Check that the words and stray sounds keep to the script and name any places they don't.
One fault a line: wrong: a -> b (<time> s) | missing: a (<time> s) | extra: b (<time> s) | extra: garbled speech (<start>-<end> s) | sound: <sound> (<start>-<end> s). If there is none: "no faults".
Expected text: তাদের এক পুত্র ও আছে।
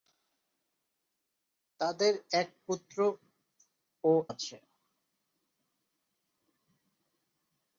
no faults